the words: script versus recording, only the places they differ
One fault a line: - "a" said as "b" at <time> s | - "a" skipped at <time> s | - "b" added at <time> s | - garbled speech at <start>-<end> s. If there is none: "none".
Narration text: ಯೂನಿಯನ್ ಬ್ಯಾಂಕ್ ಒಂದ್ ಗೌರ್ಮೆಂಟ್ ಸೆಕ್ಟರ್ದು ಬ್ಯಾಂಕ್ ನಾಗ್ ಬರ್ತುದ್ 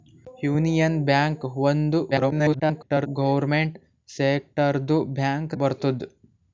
- garbled speech at 2.1-3.1 s
- "ನಾಗ್" skipped at 5.5 s